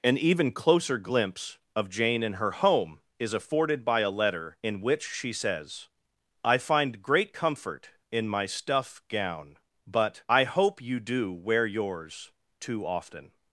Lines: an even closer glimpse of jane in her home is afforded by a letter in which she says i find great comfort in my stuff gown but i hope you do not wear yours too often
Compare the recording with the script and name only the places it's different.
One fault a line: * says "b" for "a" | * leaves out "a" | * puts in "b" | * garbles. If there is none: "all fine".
* leaves out "not"